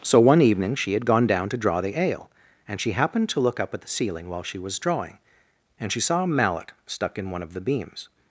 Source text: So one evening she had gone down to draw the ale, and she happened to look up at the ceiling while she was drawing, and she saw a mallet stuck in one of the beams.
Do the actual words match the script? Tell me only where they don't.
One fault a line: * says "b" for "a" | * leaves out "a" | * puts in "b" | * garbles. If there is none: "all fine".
all fine